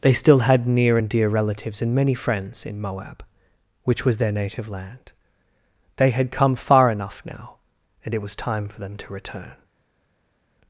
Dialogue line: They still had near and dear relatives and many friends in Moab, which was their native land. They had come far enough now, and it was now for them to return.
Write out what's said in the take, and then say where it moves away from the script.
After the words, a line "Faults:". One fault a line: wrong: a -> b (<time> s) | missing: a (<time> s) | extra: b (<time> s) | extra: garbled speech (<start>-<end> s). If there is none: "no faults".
They still had near and dear relatives and many friends in Moab, which was their native land. They had come far enough now, and it was time for them to return.
Faults:
wrong: now -> time (8.4 s)